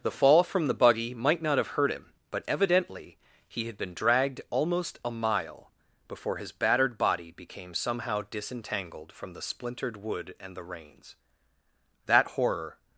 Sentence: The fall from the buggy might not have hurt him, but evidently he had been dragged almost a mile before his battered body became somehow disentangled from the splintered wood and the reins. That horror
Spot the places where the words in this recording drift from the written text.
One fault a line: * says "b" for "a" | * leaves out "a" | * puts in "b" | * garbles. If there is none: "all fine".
all fine